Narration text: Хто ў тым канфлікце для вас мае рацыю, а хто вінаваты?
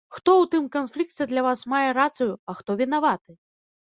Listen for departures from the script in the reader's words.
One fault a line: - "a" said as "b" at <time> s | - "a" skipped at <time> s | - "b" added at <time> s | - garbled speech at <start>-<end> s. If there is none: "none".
none